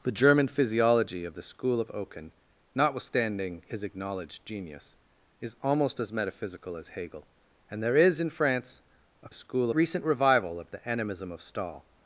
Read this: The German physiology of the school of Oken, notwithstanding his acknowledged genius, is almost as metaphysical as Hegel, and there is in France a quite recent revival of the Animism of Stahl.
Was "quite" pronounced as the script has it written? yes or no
no